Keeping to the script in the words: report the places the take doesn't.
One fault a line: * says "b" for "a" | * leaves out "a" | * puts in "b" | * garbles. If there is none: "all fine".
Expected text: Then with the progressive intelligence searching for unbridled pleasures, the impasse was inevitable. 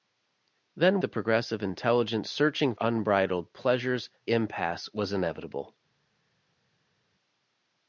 * leaves out "with"
* leaves out "for"
* leaves out "the"